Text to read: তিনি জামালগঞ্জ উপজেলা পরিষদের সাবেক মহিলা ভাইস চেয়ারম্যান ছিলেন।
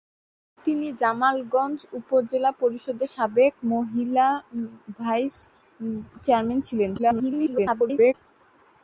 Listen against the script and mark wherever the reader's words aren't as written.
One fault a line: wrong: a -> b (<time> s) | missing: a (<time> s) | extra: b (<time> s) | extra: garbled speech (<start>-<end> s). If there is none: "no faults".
extra: garbled speech (7.0-8.1 s)